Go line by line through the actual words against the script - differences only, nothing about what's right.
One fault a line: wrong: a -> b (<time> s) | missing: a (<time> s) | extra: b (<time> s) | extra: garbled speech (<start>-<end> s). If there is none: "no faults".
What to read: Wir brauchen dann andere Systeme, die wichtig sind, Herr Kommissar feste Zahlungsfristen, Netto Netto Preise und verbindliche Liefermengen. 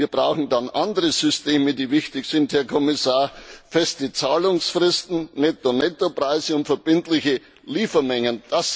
no faults